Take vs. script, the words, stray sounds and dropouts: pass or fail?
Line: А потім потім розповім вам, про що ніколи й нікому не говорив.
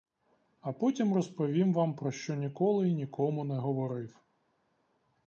fail